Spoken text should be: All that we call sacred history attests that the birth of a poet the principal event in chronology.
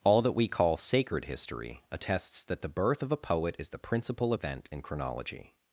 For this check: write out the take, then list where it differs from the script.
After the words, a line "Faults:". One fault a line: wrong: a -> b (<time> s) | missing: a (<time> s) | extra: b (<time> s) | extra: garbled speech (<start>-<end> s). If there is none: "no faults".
All that we call sacred history attests that the birth of a poet is the principal event in chronology.
Faults:
extra: is (3.6 s)